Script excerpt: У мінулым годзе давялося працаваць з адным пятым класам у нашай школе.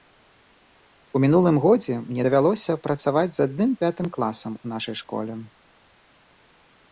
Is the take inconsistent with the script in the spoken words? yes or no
yes